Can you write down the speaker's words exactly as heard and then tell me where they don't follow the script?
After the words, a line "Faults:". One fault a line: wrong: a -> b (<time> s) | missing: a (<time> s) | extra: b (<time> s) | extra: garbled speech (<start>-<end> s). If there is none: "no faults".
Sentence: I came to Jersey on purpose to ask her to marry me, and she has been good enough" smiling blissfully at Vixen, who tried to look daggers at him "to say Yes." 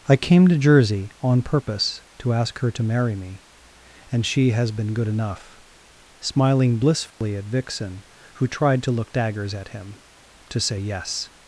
I came to Jersey on purpose to ask her to marry me, and she has been good enough" smiling blissfully at Vixen, who tried to look daggers at him "to say Yes."
Faults:
no faults